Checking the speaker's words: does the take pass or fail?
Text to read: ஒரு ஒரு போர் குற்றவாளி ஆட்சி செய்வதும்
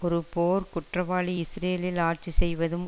fail